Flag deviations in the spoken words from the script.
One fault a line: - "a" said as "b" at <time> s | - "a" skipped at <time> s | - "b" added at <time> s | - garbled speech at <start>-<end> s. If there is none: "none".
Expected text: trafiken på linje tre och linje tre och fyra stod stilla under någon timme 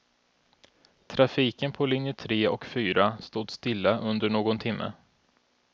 - "linje tre och" skipped at 2.6 s